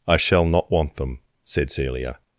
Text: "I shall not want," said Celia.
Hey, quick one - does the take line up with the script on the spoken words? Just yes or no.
no